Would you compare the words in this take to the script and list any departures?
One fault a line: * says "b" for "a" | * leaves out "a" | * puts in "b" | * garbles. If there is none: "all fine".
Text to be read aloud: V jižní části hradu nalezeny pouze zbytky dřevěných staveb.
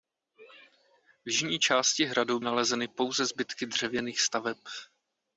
all fine